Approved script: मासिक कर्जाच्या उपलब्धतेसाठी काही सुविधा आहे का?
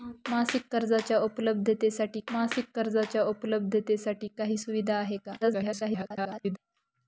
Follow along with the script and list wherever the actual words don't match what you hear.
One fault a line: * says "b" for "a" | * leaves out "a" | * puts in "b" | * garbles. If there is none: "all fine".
* puts in "मासिक कर्जाच्या उपलब्धतेसाठी"
* garbles